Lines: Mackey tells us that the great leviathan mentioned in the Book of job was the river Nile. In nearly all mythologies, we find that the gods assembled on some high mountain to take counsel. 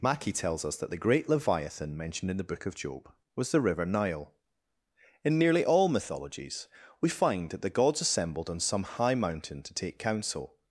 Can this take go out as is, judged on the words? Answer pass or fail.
pass